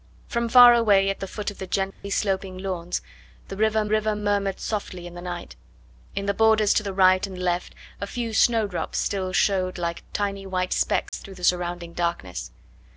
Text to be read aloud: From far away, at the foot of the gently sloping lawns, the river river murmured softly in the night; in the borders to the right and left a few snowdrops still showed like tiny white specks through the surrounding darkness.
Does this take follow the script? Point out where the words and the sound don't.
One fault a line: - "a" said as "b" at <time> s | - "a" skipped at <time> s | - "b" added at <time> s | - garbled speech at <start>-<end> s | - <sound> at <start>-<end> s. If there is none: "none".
- dropout at 1.9-2.0 s
- dropout at 11.1-11.1 s